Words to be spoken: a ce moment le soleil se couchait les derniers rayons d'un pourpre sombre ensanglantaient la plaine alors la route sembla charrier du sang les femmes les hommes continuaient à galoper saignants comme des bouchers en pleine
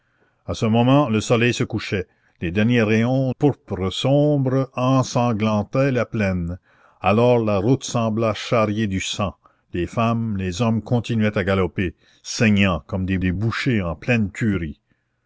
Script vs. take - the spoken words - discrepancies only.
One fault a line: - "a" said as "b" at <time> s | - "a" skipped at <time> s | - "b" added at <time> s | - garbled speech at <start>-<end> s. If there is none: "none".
- "d'un" skipped at 3.3 s
- "des" added at 13.2 s